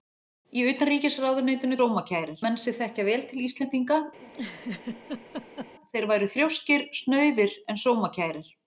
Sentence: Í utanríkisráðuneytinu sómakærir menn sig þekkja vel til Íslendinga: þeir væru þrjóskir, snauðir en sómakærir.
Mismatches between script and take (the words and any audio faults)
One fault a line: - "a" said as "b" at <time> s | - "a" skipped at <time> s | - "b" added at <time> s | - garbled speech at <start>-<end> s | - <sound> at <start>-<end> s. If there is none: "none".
- laugh at 4.2-5.7 s